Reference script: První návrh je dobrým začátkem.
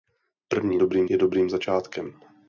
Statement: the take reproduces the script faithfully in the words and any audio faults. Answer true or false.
false